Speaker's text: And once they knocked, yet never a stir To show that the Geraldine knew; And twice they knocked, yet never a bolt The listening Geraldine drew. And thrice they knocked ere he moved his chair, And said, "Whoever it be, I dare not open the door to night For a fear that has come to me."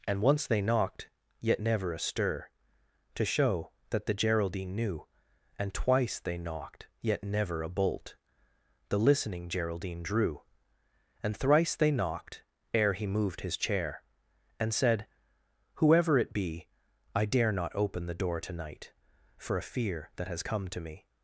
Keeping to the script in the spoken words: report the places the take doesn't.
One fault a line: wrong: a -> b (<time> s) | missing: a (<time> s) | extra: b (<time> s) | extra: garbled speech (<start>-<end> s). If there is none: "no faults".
no faults